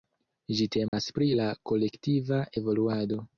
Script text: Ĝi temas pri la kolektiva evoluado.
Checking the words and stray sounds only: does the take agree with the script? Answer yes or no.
no